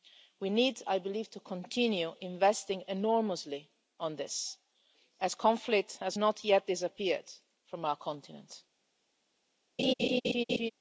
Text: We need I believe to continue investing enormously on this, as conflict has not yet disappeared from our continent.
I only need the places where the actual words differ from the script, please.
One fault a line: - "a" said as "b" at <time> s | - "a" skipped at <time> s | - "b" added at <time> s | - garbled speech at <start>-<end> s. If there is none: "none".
none